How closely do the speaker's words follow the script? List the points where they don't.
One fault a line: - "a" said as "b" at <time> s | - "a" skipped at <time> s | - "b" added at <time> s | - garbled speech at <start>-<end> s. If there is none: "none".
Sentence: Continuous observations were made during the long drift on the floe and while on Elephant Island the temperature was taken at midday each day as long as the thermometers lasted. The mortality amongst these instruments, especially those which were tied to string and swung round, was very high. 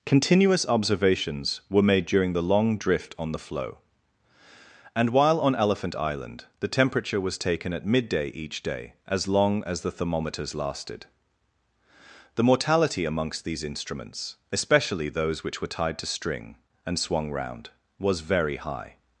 none